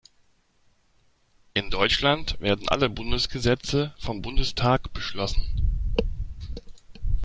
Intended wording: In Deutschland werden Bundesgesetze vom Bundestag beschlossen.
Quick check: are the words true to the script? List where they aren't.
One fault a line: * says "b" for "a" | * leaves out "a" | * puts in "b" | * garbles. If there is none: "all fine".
* puts in "alle"